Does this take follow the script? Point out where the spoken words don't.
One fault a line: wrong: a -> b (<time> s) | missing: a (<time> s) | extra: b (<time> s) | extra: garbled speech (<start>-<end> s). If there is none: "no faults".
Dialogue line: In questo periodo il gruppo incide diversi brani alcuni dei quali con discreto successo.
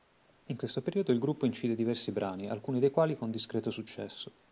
no faults